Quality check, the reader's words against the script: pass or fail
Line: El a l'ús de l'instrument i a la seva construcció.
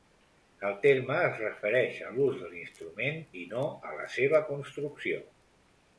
fail